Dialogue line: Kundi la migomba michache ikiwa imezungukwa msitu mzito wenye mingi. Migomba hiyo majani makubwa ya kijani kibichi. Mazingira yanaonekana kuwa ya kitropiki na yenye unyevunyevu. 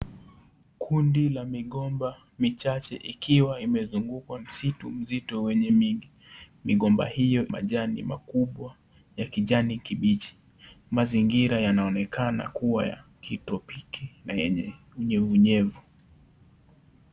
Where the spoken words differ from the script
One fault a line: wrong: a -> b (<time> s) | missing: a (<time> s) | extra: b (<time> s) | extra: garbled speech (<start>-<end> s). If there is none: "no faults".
no faults